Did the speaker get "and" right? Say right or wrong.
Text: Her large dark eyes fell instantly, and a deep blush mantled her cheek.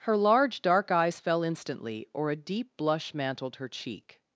wrong